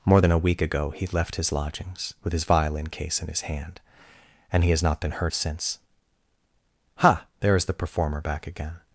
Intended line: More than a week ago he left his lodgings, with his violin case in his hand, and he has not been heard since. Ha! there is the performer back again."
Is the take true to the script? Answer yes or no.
yes